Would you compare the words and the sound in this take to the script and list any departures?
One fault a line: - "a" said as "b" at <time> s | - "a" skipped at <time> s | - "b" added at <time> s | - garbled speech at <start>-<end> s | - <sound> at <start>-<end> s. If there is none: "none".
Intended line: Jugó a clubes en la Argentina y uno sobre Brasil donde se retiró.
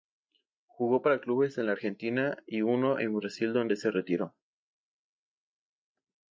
- "a" said as "para" at 1.0 s
- "sobre" said as "en" at 3.0 s